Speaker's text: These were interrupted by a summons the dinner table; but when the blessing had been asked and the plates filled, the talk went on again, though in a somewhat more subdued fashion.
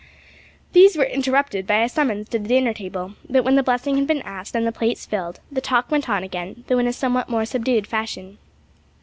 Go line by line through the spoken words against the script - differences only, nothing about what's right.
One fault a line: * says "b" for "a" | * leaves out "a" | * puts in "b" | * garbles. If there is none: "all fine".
* puts in "to"